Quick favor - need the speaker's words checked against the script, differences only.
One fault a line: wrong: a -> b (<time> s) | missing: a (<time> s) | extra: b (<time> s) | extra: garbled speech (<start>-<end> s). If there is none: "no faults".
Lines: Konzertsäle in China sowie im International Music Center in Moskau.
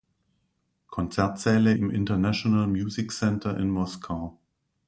missing: in China sowie (1.7 s)